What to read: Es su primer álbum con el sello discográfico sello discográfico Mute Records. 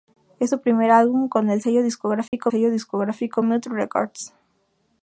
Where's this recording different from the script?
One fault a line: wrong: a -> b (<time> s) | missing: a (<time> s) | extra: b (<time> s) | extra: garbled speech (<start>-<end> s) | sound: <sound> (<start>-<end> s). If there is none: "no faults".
sound: dropout (2.3-2.3 s)